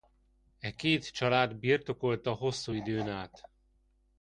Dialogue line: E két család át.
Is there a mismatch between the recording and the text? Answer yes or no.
yes